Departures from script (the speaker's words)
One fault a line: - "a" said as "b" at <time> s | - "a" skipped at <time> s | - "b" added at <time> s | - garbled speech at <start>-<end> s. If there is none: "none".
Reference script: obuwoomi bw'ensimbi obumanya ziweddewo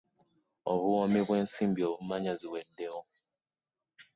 none